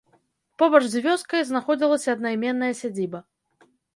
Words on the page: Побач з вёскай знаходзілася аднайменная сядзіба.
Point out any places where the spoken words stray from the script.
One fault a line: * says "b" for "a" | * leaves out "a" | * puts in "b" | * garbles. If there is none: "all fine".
all fine